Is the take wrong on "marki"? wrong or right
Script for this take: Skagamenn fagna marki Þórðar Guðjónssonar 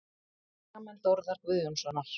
wrong